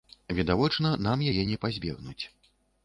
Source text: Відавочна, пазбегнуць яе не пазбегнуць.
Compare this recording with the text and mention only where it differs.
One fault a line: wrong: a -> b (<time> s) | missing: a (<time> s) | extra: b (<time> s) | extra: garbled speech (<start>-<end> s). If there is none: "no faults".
wrong: пазбегнуць -> нам (1.1 s)